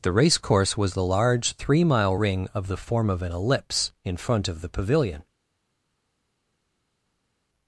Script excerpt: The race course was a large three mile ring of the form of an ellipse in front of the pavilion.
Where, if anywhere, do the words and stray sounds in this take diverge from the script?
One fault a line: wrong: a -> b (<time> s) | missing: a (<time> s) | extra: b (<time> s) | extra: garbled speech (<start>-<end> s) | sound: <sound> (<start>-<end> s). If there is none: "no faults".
wrong: a -> the (0.9 s)